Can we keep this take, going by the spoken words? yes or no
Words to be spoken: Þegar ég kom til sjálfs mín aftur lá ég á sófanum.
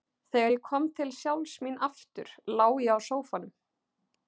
yes